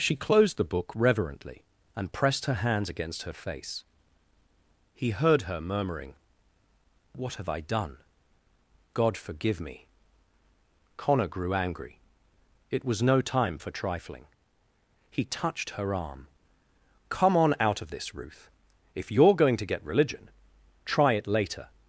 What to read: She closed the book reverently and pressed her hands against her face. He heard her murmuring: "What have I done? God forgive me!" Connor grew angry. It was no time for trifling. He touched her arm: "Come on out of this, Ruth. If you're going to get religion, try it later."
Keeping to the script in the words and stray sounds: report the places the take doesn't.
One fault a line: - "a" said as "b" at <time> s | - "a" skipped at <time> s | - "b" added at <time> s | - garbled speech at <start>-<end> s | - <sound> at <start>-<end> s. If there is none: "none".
none